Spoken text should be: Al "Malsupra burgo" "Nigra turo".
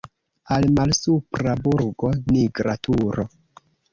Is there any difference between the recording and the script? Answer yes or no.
no